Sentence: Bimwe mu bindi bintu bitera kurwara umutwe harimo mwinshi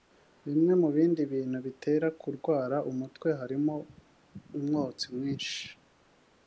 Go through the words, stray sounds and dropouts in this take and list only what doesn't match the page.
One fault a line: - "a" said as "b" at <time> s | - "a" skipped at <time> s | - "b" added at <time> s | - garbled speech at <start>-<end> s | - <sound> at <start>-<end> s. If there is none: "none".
- "umwotsi" added at 4.6 s